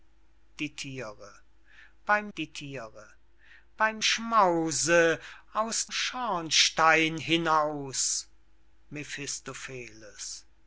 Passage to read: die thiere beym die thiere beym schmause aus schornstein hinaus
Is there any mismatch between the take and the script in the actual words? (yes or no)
no